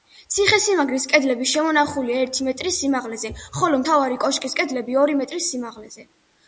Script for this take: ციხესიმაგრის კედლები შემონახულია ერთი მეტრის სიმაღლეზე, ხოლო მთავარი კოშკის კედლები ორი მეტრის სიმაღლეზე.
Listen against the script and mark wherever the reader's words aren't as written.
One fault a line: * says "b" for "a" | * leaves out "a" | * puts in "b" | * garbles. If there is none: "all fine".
all fine